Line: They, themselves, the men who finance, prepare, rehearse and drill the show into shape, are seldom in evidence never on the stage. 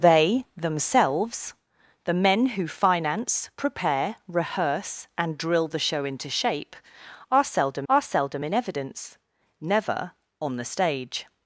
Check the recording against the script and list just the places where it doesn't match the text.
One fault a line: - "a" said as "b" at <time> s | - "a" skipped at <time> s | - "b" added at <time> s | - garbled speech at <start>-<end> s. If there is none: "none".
- "are seldom" added at 7.9 s